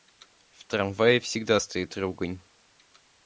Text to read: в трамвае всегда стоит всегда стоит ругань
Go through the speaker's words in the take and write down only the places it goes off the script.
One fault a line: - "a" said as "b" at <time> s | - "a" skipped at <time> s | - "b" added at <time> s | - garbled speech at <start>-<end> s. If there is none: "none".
- "всегда стоит" skipped at 2.0 s